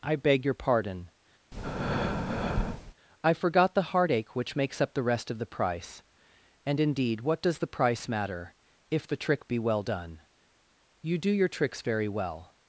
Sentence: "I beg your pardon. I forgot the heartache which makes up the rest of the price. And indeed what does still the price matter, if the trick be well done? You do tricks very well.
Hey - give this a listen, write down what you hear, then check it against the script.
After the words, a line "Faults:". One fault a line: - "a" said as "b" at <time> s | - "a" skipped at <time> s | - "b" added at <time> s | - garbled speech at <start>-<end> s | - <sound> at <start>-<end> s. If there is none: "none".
"I beg your pardon. I forgot the heartache which makes up the rest of the price. And indeed what does the price matter, if the trick be well done? You do your tricks very well.
Faults:
- breath at 1.5-2.9 s
- "still" skipped at 7.6 s
- "your" added at 11.3 s